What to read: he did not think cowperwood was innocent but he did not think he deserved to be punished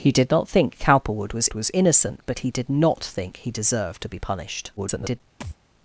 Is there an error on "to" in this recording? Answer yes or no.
no